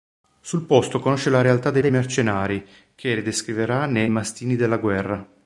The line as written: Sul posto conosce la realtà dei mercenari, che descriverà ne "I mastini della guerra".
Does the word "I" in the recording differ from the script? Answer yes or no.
yes